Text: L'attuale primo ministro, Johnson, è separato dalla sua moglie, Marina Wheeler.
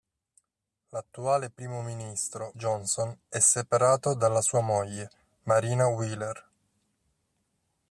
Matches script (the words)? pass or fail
pass